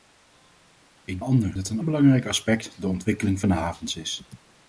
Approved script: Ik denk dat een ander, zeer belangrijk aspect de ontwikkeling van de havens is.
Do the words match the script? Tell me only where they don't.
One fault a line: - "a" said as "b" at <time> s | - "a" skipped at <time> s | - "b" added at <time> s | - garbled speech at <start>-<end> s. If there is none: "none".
- "denk" said as "ander" at 1.2 s
- "ander zeer" skipped at 1.8 s